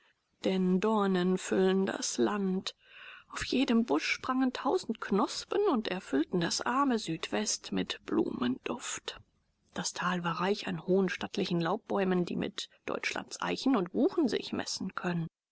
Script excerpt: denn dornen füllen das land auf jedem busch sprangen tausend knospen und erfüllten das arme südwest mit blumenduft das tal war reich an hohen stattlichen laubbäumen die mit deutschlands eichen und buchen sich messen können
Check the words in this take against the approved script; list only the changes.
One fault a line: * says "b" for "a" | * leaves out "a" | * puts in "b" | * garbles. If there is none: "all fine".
all fine